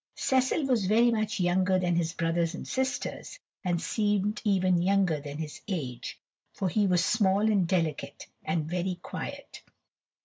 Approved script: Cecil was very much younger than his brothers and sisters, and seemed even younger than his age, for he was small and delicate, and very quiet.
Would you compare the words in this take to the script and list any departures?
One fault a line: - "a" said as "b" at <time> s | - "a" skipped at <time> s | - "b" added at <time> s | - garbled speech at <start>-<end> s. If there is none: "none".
none